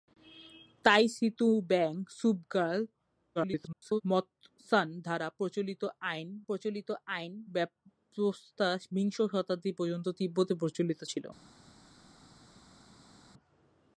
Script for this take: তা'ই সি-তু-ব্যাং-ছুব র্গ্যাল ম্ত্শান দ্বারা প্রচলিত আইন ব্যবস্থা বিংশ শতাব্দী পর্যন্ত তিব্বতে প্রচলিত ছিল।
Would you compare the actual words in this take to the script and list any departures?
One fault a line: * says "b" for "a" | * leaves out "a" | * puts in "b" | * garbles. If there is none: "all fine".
* garbles
* puts in "প্রচলিত আইন"